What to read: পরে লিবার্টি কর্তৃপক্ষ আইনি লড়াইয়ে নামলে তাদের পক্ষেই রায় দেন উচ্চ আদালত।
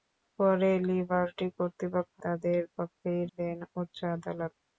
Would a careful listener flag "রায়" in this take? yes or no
yes